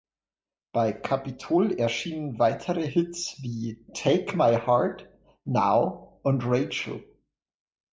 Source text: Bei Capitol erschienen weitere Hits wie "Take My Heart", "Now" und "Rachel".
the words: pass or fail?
pass